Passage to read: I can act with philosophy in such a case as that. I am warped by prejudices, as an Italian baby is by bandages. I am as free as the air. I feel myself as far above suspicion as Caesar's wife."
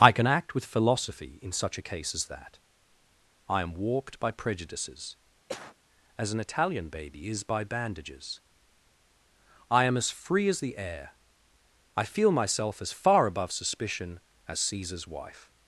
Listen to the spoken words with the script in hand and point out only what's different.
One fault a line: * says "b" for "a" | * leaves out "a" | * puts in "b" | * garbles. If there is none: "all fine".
all fine